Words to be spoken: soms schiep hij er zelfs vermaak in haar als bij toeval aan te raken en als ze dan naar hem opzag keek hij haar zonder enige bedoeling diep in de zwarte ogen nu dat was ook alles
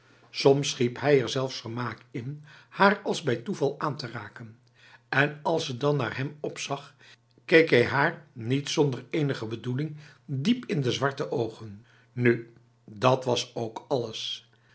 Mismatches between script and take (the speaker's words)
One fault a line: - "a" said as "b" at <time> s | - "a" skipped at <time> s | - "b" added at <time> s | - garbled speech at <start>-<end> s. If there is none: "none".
- "niet" added at 8.3 s